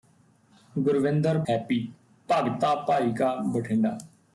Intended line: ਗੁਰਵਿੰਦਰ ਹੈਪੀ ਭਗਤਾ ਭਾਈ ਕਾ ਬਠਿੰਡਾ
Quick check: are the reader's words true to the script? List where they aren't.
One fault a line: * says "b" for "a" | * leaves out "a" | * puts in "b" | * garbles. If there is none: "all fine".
all fine